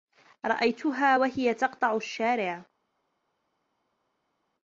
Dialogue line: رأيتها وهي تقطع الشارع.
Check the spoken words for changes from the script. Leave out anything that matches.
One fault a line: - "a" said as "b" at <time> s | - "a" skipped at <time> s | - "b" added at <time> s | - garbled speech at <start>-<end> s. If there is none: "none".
none